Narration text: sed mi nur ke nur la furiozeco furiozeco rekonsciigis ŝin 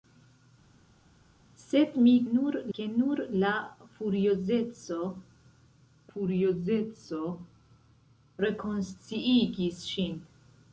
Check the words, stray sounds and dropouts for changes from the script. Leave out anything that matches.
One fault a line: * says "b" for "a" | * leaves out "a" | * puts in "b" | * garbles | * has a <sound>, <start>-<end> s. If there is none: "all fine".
all fine